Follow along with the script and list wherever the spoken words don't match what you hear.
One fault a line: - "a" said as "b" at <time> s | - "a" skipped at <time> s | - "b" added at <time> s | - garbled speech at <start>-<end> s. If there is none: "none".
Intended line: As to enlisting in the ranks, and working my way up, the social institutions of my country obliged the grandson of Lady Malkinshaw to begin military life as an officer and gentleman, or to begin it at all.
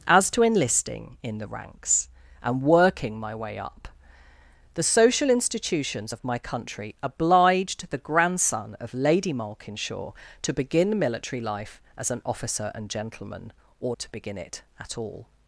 none